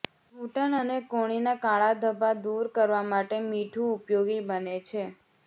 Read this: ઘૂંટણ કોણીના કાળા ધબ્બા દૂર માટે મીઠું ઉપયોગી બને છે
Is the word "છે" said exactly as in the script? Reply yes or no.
yes